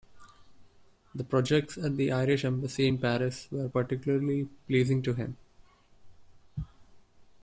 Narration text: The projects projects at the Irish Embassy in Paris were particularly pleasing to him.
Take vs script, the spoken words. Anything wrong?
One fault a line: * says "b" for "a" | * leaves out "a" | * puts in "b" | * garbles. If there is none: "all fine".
* leaves out "projects"